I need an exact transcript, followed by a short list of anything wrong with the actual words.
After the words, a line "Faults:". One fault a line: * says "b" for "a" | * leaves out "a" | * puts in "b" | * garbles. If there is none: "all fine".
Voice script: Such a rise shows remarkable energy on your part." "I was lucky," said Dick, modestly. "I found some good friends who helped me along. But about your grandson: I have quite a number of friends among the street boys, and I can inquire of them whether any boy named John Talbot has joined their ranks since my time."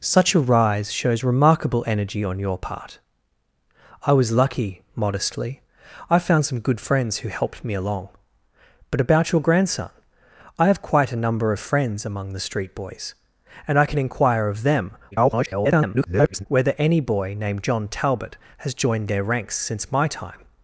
Such a rise shows remarkable energy on your part." "I was lucky," modestly. "I found some good friends who helped me along. But about your grandson: I have quite a number of friends among the street boys, and I can inquire of them [garbled] whether any boy named John Talbot has joined their ranks since my time."
Faults:
* leaves out "said Dick"
* garbles